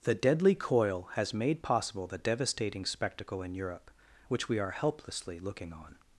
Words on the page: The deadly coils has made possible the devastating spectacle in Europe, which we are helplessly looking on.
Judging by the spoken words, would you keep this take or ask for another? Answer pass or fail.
fail